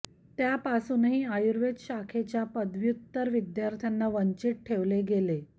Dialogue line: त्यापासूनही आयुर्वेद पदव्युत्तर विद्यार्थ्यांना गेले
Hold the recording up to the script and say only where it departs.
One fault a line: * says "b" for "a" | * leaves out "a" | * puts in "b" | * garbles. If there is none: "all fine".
* puts in "शाखेच्या"
* puts in "वंचित ठेवले"